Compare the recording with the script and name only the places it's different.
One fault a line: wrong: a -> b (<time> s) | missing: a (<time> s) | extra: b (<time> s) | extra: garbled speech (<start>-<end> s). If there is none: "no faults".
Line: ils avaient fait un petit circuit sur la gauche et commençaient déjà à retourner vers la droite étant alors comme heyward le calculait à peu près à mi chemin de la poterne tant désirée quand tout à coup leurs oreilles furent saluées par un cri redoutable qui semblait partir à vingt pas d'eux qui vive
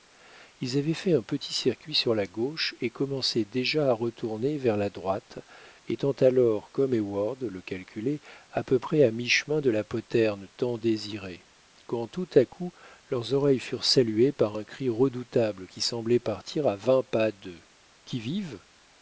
no faults